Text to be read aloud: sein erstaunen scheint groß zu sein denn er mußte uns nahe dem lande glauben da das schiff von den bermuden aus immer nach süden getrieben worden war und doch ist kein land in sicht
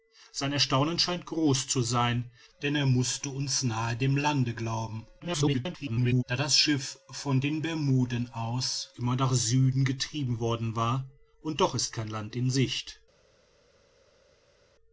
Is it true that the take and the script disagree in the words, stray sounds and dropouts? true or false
true